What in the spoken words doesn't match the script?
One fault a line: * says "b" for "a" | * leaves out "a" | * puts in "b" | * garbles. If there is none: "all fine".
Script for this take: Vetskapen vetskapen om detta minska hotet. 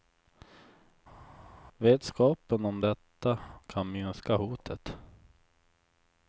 * leaves out "vetskapen"
* puts in "kan"